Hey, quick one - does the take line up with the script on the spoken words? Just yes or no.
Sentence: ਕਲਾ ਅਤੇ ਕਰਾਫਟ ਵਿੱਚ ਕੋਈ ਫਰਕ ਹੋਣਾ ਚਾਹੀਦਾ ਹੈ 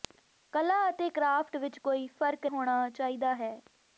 yes